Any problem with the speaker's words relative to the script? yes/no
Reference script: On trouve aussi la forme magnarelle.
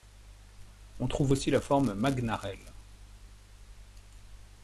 no